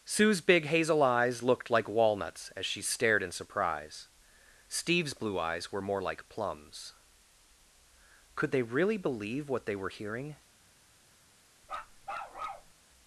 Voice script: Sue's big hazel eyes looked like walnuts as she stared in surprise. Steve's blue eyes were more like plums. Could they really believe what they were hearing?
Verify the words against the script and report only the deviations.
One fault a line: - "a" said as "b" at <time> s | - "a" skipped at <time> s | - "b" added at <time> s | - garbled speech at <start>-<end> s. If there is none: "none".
none